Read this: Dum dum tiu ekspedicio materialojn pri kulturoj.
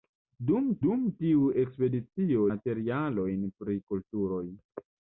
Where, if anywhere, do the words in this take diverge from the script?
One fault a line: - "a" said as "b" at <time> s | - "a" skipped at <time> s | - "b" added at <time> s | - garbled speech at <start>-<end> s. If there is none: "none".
none